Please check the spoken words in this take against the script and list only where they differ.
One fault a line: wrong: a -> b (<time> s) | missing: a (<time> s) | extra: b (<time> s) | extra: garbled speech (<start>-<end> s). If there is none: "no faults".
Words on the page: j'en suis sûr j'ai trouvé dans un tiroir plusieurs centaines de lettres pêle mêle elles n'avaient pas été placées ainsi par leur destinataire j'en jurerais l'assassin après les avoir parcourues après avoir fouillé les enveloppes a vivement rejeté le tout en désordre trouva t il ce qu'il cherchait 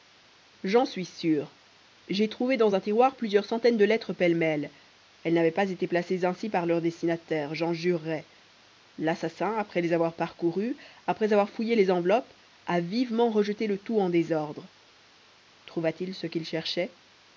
no faults